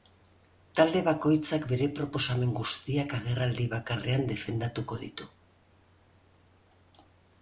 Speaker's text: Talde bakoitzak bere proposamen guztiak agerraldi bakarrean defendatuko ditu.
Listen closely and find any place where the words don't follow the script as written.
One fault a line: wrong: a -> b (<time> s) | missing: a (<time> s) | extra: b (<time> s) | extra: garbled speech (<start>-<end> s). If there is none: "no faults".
no faults